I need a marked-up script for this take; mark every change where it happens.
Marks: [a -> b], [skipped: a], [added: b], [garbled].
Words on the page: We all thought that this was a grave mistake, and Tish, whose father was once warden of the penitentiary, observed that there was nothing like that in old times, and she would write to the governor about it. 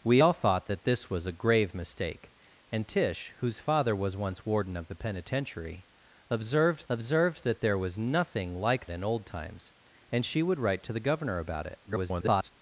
We all thought that this was a grave mistake, and Tish, whose father was once warden of the penitentiary, observed [added: observed] that there was nothing like [skipped: that] in old times, and she would write to the governor about it. [garbled]